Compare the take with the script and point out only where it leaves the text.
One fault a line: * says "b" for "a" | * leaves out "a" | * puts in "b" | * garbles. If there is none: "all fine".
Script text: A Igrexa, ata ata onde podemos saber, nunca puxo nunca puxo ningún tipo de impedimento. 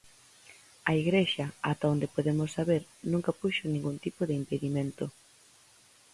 * leaves out "ata"
* leaves out "nunca puxo"